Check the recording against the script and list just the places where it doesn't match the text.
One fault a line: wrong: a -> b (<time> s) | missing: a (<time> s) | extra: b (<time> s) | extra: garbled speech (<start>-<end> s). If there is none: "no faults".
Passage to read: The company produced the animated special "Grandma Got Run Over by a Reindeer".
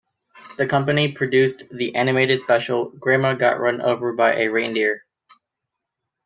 no faults